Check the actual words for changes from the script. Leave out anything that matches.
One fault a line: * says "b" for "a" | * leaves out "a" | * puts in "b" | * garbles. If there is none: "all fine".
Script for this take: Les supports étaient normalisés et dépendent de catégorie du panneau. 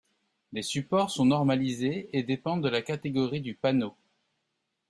* says "sont" for "étaient"
* puts in "la"